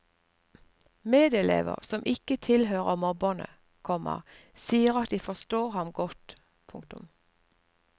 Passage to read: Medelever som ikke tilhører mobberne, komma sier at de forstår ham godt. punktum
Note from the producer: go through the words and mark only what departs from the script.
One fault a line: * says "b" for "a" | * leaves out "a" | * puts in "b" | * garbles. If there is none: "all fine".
all fine